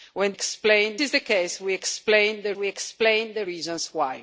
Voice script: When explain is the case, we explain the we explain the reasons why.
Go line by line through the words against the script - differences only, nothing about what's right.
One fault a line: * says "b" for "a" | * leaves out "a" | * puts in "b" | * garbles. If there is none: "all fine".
all fine